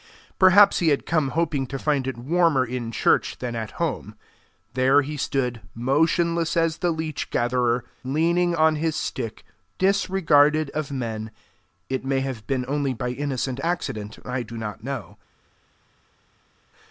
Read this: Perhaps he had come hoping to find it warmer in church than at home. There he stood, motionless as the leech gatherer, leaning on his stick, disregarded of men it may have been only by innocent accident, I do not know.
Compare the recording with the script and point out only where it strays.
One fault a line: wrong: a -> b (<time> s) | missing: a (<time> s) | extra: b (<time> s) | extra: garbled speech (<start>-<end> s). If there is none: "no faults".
no faults